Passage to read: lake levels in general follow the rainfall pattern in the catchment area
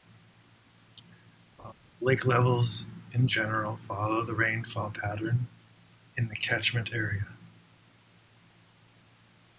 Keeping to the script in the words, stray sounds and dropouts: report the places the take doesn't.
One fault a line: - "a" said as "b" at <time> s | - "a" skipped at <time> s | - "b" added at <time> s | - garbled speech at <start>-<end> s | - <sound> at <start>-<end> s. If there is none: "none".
- laugh at 1.6-1.7 s